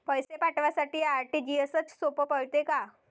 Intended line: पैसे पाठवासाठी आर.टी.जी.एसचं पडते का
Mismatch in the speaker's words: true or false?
true